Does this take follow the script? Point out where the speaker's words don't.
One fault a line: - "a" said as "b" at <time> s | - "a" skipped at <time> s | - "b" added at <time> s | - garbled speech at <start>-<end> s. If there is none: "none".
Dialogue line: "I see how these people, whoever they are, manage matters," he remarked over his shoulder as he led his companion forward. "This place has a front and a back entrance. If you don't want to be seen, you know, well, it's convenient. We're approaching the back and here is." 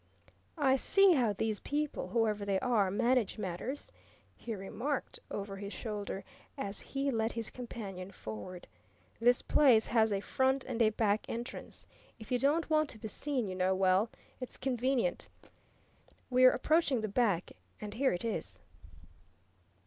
- "it" added at 18.1 s